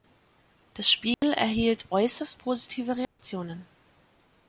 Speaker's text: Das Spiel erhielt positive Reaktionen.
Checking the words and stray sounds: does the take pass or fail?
fail